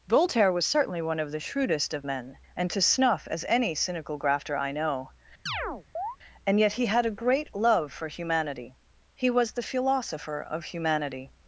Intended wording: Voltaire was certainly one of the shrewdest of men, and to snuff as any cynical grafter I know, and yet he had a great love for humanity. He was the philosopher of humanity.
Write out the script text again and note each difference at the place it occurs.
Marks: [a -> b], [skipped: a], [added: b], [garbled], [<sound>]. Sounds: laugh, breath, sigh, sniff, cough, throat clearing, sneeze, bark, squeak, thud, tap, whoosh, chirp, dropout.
Voltaire was certainly one of the shrewdest of men, and to snuff as any cynical grafter I know, [chirp] and yet he had a great love for humanity. He was the philosopher of humanity.